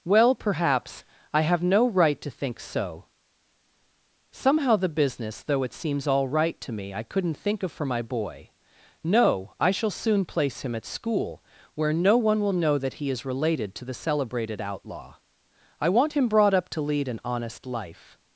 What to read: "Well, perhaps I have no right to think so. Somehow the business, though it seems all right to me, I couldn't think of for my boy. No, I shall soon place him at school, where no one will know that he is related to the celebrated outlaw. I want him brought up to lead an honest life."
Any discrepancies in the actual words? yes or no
no